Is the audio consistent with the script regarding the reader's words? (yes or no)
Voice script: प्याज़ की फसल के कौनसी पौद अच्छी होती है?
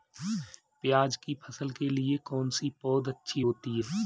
no